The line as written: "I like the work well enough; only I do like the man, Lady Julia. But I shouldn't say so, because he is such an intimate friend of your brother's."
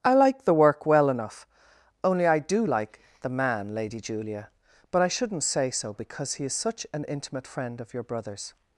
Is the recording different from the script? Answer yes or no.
no